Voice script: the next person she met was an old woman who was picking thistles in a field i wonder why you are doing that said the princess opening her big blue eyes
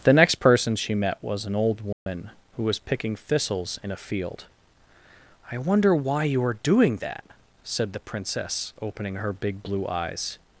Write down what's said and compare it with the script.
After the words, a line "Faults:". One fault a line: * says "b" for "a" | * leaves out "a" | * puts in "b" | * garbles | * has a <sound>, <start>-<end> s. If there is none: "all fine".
the next person she met was an old woman who was picking thistles in a field i wonder why you are doing that said the princess opening her big blue eyes
Faults:
* has a dropout, 1.9-2.1 s